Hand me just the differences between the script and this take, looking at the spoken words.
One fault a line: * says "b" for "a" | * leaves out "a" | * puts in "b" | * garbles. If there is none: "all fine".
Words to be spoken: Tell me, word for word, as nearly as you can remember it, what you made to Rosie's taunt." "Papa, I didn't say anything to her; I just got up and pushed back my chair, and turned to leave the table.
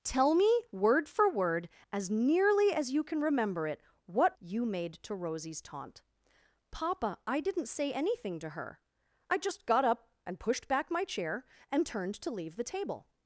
all fine